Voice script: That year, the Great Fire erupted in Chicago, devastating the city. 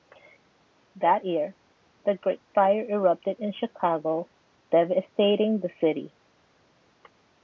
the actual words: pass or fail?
pass